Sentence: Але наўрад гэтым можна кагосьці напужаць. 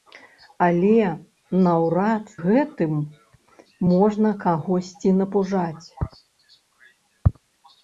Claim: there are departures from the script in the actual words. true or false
false